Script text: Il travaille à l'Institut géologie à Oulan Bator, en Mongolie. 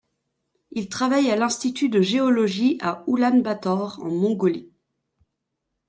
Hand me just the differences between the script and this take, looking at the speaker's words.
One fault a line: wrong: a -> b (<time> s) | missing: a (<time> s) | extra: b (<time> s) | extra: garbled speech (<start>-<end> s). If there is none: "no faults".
extra: de (1.9 s)